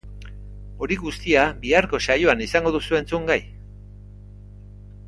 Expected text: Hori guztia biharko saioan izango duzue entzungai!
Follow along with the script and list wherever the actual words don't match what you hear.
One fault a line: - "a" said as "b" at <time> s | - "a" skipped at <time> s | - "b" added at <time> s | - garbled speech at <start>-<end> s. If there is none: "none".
none